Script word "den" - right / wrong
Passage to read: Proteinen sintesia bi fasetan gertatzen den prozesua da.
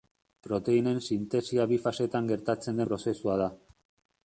wrong